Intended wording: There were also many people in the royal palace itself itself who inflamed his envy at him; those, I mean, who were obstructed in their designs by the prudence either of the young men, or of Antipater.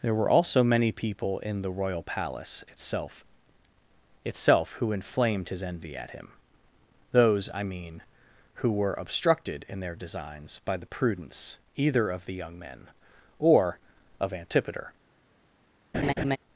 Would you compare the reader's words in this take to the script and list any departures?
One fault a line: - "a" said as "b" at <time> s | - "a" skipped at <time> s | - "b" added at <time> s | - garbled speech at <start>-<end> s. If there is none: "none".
none